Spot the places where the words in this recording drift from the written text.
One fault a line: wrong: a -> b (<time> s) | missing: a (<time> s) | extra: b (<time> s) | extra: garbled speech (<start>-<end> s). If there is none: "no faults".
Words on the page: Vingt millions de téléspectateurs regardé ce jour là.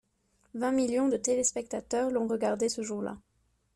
extra: l'ont (2.1 s)